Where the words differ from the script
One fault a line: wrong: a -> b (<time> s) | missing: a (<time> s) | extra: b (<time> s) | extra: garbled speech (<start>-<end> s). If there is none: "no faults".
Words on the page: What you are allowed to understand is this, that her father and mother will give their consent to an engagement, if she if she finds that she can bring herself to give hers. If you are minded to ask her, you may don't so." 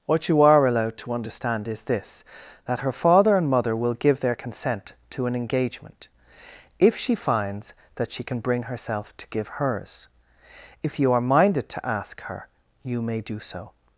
missing: if she (7.1 s)
wrong: don't -> do (13.2 s)